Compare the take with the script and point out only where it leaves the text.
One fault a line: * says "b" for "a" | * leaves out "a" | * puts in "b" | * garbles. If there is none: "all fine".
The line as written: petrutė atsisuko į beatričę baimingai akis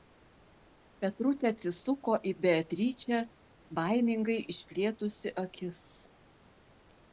* puts in "išplėtusi"